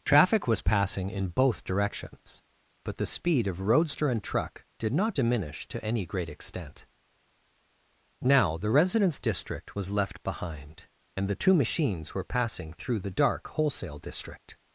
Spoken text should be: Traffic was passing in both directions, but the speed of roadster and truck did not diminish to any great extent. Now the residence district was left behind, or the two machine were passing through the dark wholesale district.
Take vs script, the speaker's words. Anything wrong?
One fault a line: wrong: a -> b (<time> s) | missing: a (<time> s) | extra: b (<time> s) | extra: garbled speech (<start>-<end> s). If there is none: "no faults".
wrong: or -> and (11.2 s)
wrong: machine -> machines (11.5 s)